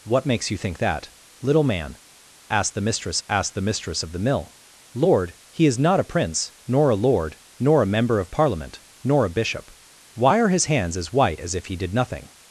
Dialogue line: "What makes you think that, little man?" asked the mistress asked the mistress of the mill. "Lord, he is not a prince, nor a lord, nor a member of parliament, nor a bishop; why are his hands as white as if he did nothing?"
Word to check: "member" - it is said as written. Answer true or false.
true